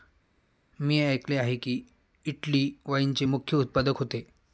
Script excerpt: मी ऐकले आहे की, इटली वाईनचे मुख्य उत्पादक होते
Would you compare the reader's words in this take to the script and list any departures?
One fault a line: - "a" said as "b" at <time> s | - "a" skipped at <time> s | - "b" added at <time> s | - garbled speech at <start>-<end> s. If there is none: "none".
none